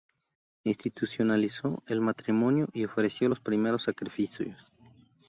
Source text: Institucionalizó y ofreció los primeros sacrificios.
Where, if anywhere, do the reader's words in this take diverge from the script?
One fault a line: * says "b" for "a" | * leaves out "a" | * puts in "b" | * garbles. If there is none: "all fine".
* puts in "el matrimonio"